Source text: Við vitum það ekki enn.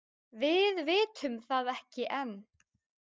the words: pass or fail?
pass